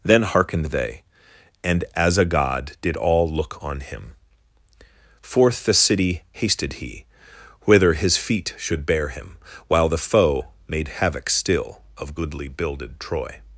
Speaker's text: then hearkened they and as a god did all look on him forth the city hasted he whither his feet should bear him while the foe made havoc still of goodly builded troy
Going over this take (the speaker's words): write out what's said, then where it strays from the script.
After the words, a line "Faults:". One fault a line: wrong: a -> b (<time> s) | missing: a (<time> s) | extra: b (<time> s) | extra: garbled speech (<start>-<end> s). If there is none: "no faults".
then hearkened they and as a god did all look on him forth the city hasted he whither his feet should bear him while the foe made havoc still of goodly builded troy
Faults:
no faults